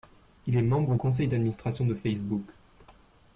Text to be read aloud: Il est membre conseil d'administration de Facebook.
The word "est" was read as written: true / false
true